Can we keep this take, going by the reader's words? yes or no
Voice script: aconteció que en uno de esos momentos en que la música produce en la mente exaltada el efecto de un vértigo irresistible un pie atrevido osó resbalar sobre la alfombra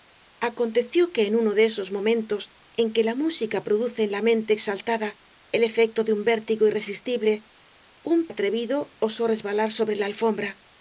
no